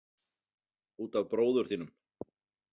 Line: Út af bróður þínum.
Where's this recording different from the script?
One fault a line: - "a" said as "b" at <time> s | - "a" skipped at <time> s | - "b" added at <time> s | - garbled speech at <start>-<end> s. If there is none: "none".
none